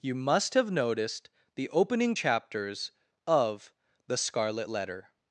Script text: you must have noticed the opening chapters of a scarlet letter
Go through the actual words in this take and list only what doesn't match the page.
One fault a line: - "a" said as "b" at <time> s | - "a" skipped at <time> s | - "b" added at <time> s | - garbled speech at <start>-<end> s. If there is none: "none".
- "a" said as "the" at 4.1 s